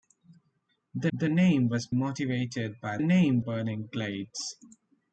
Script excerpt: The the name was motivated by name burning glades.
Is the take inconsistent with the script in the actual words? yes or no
no